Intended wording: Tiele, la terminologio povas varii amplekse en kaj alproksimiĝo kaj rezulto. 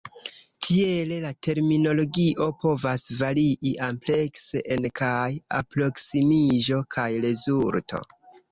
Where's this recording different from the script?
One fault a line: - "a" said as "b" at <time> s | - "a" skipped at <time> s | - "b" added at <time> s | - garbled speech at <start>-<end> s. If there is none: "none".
none